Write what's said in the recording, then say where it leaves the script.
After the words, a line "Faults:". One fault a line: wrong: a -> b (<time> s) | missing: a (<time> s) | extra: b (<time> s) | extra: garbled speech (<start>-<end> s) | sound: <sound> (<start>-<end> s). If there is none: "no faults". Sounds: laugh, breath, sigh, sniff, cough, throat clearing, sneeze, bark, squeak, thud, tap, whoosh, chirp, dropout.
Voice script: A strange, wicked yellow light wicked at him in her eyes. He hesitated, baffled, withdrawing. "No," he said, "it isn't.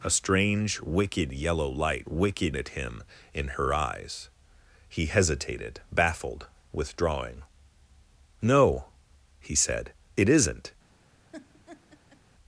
A strange, wicked yellow light wicked at him in her eyes. He hesitated, baffled, withdrawing. "No," he said, "it isn't.
Faults:
sound: laugh (11.3-12.2 s)